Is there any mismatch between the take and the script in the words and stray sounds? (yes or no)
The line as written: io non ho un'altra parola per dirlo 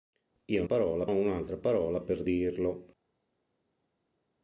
yes